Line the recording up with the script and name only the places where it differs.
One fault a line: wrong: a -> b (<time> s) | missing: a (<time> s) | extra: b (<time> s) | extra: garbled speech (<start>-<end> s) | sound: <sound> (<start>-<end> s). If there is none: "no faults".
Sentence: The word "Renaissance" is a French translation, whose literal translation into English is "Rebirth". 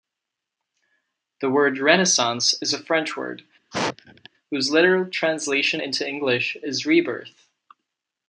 wrong: translation -> word (3.2 s)
sound: sneeze (3.7-4.3 s)